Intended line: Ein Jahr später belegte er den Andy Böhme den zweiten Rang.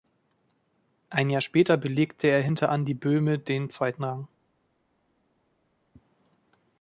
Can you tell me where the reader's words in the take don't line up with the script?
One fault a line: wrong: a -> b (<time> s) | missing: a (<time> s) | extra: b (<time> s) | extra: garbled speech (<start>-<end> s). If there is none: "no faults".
wrong: den -> hinter (2.4 s)